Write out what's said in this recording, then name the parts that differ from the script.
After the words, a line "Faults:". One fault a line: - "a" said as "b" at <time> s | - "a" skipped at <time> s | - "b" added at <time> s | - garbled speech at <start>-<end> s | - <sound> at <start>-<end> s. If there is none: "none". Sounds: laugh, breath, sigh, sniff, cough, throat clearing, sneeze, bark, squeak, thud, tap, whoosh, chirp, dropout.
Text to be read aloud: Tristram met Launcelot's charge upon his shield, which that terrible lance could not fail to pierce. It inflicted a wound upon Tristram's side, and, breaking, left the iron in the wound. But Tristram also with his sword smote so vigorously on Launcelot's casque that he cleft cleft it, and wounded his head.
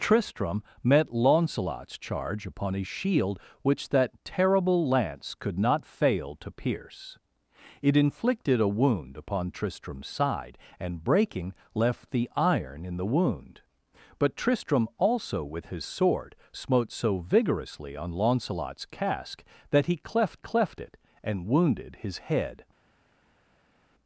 Tristram met Launcelot's charge upon his shield, which that terrible lance could not fail to pierce. It inflicted a wound upon Tristram's side, and, breaking, left the iron in the wound. But Tristram also with his sword smote so vigorously on Launcelot's casque that he cleft cleft it, and wounded his head.
Faults:
none